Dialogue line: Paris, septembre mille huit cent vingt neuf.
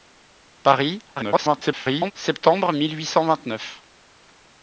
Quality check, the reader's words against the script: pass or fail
fail